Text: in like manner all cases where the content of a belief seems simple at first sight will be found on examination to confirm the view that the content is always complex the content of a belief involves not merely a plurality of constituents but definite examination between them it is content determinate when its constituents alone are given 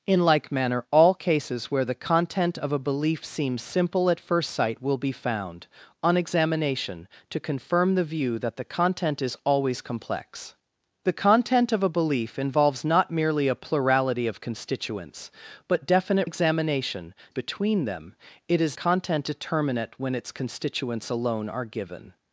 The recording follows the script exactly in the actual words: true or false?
true